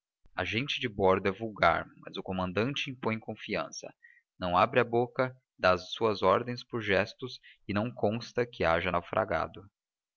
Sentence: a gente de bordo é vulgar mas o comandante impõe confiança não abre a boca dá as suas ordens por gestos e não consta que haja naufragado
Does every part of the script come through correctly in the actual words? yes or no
yes